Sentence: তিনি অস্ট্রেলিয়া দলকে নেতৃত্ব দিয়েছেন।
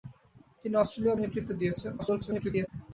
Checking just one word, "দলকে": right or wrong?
wrong